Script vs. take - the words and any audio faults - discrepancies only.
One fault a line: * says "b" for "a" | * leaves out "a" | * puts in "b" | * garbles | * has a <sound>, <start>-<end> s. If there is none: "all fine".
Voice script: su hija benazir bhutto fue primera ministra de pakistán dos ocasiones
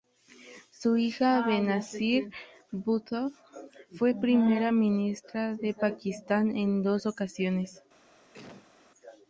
* puts in "en"
* has a sneeze, 8.3-8.7 s